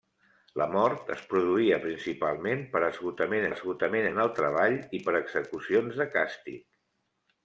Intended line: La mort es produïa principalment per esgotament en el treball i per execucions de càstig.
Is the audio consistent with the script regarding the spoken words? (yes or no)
no